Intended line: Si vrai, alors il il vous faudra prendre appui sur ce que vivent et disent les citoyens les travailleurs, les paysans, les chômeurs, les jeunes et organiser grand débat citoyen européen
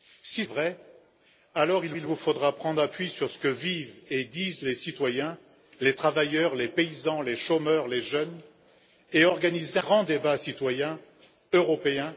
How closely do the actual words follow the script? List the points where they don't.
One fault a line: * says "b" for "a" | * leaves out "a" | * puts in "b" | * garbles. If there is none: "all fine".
all fine